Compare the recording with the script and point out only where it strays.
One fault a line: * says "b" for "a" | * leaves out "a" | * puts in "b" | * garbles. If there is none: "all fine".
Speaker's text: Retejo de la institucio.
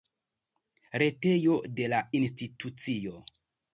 all fine